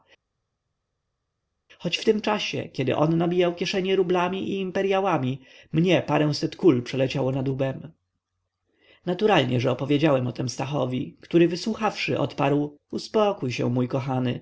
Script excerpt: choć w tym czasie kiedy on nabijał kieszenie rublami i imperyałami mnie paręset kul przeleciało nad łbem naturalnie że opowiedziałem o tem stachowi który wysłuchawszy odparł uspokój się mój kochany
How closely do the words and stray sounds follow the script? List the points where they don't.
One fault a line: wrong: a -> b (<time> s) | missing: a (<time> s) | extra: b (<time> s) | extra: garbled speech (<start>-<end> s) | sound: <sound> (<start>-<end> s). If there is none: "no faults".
no faults